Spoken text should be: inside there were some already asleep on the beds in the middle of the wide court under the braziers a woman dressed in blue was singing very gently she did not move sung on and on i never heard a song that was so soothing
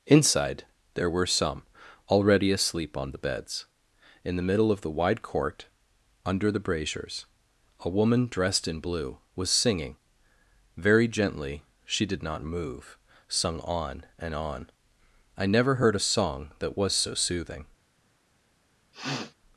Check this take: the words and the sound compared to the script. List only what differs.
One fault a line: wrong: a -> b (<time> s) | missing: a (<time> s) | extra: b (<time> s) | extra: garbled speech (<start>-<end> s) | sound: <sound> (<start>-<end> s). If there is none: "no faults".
sound: sniff (18.9-19.3 s)